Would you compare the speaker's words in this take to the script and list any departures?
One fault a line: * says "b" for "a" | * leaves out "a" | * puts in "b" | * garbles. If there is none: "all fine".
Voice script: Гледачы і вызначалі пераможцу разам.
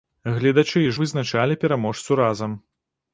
all fine